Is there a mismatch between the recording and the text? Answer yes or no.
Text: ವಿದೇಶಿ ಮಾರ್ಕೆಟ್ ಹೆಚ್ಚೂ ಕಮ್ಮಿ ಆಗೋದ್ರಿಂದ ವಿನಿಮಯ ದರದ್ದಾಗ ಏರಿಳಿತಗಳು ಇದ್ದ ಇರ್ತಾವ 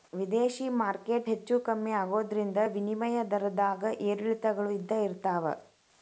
no